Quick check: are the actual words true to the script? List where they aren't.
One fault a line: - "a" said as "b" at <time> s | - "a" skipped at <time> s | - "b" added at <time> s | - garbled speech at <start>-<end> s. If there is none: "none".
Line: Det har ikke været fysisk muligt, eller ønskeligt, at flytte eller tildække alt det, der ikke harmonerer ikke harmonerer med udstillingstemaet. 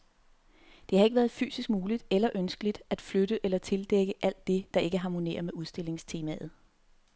- "ikke harmonerer" skipped at 5.4 s